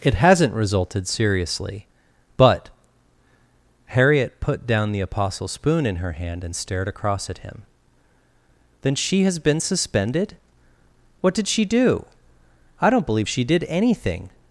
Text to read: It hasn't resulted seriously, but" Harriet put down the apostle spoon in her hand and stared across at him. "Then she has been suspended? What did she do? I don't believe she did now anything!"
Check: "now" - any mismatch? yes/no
yes